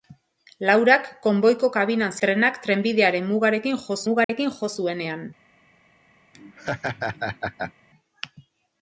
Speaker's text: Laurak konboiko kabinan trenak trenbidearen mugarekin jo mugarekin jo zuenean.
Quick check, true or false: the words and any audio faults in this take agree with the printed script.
false